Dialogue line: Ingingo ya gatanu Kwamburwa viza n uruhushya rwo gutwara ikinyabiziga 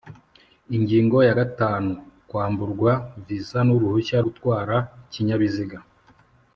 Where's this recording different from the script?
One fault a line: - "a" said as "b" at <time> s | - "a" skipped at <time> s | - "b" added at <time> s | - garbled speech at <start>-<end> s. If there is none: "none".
- "rwo" skipped at 4.2 s